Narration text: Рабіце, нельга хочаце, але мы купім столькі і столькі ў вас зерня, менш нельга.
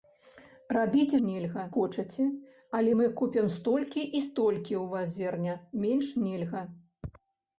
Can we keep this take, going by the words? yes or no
yes